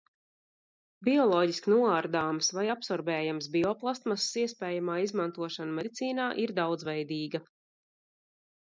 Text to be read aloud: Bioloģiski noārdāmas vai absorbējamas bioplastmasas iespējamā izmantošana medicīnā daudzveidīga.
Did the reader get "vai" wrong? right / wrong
right